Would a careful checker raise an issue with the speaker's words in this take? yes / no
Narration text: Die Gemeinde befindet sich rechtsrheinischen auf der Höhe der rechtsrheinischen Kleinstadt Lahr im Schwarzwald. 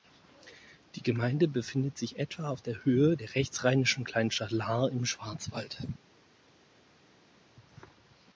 yes